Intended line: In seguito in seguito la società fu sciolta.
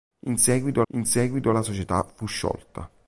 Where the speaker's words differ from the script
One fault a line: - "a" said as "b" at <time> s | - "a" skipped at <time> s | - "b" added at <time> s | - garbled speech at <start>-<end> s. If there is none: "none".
none